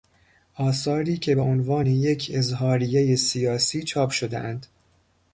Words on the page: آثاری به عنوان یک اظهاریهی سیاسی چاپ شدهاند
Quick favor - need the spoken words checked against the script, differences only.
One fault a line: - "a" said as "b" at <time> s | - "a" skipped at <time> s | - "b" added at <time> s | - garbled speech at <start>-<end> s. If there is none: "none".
- "که" added at 1.2 s